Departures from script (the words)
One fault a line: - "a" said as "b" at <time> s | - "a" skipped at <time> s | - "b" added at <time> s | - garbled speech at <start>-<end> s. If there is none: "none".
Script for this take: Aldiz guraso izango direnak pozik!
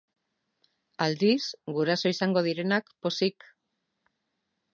none